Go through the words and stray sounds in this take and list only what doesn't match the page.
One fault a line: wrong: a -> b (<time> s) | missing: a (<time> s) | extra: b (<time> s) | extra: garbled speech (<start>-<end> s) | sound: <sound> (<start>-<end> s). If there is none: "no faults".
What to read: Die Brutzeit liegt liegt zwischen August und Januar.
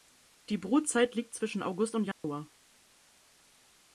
missing: liegt (1.4 s)
sound: dropout (2.1-2.2 s)